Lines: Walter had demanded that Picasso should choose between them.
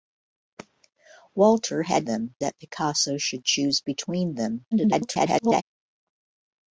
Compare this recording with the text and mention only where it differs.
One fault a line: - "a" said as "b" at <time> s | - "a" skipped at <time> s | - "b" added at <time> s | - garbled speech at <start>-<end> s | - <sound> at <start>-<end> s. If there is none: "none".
- "demanded" said as "them" at 2.0 s
- garbled speech at 4.7-5.6 s